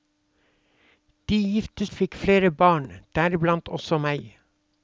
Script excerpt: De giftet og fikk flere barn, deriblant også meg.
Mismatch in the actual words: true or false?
false